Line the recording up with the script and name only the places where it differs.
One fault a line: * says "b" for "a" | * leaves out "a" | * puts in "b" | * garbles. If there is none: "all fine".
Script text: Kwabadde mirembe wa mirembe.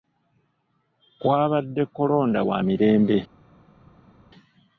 * says "kolonda" for "mirembe"